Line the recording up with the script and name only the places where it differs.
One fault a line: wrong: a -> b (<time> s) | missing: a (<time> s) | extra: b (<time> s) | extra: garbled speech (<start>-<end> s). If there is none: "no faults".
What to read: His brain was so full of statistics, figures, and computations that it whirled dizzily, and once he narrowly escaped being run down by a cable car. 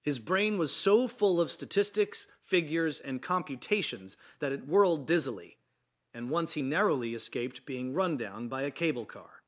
no faults